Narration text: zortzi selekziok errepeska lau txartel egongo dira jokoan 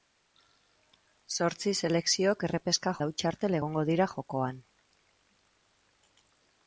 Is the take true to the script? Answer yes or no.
yes